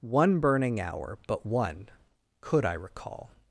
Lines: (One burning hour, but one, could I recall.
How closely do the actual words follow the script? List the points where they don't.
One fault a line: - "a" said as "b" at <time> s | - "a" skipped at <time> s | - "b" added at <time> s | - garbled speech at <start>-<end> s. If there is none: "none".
none